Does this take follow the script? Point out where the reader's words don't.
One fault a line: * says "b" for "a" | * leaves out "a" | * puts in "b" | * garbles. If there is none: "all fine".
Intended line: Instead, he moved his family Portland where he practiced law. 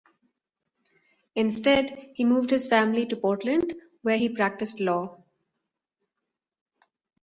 * puts in "to"